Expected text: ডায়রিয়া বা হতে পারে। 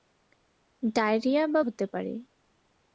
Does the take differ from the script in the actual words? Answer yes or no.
no